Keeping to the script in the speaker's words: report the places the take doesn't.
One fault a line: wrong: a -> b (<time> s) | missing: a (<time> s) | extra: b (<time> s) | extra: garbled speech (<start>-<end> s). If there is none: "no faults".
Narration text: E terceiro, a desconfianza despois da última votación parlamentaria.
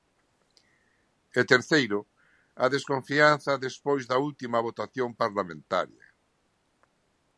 no faults